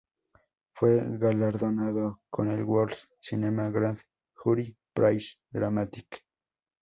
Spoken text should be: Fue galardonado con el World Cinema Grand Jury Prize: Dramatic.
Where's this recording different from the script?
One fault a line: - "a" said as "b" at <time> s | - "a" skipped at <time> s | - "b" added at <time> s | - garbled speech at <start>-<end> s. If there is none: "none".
none